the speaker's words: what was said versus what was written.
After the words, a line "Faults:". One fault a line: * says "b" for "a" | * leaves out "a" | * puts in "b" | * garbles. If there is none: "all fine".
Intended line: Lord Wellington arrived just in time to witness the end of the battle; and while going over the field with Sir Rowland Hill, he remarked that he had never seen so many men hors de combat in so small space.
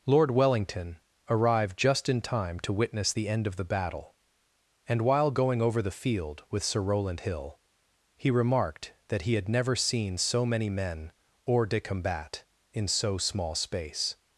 Lord Wellington arrived just in time to witness the end of the battle; and while going over the field with Sir Rowland Hill, he remarked that he had never seen so many men hors de combat in so small space.
Faults:
all fine